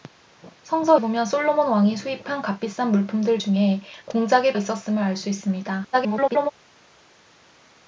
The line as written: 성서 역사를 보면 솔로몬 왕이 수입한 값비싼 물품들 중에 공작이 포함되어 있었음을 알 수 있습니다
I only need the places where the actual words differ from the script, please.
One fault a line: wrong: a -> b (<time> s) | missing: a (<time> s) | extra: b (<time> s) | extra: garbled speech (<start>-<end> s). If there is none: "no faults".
missing: 역사를 (1.0 s)
missing: 포함되어 (4.5 s)
extra: garbled speech (5.9-6.5 s)